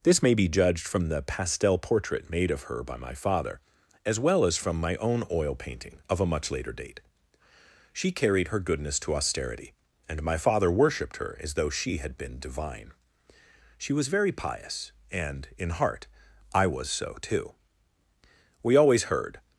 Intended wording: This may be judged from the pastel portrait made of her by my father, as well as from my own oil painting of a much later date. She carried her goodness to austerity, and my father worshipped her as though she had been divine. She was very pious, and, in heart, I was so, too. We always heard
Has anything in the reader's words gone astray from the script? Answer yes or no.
no